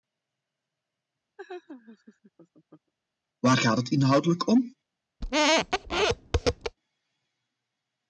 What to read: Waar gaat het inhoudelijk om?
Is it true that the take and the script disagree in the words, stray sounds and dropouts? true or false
true